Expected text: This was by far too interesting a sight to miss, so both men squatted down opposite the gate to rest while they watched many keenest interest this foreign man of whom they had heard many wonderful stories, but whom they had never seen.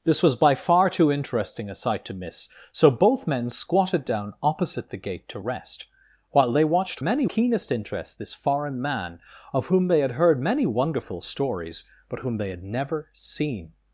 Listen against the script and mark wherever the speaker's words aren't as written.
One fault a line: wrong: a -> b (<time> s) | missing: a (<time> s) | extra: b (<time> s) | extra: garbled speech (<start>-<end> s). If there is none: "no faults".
no faults